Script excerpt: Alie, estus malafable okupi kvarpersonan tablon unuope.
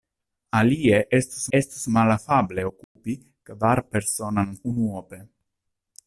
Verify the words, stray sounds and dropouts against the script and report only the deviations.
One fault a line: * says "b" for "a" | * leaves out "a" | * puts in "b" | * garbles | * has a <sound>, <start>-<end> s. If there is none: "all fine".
* puts in "estus"
* has a dropout, 2.8-3.0 s
* leaves out "tablon"